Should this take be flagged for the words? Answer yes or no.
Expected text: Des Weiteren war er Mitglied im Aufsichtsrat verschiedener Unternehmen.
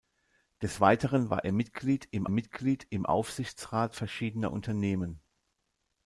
yes